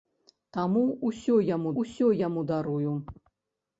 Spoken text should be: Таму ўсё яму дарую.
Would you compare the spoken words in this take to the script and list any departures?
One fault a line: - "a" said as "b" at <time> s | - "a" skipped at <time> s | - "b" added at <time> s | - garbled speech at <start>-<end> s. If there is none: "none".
- "ўсё яму" added at 1.8 s